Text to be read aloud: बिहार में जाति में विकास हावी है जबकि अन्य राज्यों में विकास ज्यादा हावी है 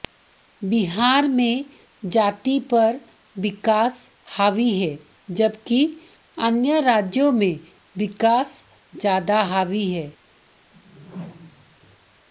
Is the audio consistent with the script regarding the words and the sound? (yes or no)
no